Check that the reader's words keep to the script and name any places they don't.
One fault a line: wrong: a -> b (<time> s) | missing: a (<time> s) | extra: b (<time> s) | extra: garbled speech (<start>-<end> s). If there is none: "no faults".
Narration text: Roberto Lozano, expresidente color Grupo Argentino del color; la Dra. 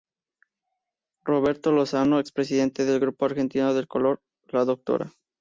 wrong: color -> del (2.9 s)